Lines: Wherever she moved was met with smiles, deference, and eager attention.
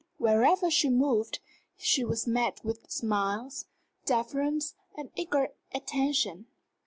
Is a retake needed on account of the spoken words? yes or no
yes